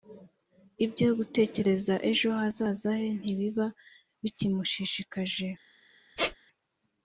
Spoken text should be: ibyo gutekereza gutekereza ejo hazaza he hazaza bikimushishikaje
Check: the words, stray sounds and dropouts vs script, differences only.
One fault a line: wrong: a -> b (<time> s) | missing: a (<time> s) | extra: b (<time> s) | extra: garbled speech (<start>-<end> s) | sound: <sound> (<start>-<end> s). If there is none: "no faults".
missing: gutekereza (1.9 s)
wrong: hazaza -> ntibiba (3.2 s)
sound: squeak (6.2-6.4 s)